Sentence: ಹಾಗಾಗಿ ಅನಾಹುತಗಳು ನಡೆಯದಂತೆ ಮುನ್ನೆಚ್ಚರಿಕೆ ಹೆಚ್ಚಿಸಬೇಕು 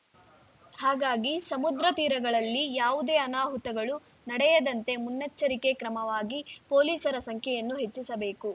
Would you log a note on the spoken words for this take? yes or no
yes